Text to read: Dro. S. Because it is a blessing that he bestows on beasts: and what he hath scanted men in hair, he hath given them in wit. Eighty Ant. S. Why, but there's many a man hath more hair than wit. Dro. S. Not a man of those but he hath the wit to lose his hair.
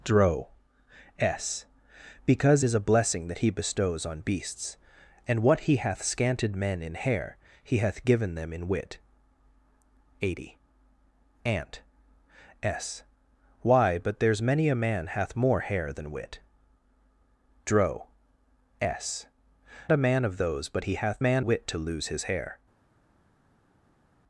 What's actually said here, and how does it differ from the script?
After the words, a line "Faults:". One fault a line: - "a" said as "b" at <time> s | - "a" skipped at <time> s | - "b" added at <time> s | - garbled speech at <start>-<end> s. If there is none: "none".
Dro. S. Because is a blessing that he bestows on beasts: and what he hath scanted men in hair, he hath given them in wit. Eighty Ant. S. Why, but there's many a man hath more hair than wit. Dro. S. A man of those but he hath man wit to lose his hair.
Faults:
- "it" skipped at 2.6 s
- "Not" skipped at 19.3 s
- "the" said as "man" at 21.2 s